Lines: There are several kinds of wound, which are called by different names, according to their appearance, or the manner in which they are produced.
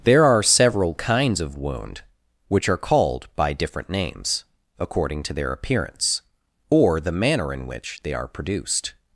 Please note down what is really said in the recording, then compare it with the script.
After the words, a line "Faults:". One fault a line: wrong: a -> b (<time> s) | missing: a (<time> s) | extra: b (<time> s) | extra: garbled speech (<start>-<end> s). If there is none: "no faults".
There are several kinds of wound, which are called by different names, according to their appearance, or the manner in which they are produced.
Faults:
no faults